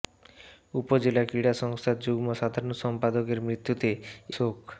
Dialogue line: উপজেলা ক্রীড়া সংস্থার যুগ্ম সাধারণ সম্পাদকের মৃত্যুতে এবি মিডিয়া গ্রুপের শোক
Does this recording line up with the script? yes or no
no